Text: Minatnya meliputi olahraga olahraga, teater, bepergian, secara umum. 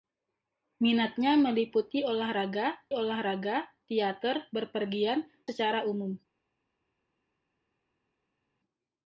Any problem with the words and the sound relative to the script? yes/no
no